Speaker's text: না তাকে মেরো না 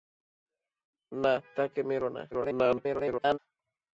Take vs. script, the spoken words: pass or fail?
fail